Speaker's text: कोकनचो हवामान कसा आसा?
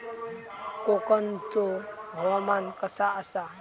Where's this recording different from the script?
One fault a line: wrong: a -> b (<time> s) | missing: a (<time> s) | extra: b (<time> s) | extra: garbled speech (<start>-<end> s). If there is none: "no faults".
no faults